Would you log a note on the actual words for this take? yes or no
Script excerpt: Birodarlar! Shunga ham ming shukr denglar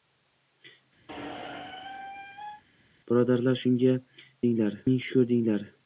yes